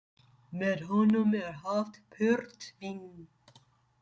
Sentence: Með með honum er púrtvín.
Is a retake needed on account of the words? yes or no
yes